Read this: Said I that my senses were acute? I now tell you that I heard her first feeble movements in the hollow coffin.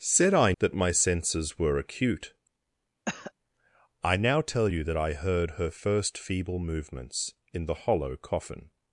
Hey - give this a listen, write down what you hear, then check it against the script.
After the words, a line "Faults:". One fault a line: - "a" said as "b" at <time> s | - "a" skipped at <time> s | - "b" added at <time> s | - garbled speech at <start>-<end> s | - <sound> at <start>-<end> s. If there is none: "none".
Said I that my senses were acute? I now tell you that I heard her first feeble movements in the hollow coffin.
Faults:
- cough at 3.1-3.3 s